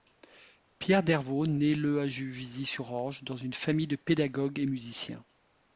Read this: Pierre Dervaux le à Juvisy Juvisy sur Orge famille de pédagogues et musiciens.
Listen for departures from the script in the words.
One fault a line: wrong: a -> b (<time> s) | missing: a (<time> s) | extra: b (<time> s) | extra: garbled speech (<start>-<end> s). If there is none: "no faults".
extra: naît (1.4 s)
missing: Juvisy (2.6 s)
extra: dans une (3.2 s)